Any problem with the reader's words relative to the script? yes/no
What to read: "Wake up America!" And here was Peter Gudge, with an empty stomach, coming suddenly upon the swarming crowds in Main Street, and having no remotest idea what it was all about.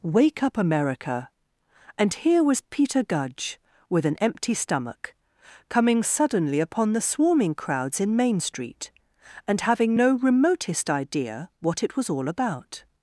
no